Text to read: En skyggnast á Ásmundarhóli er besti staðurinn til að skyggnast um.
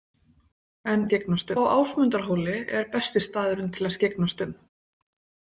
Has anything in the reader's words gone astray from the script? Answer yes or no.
no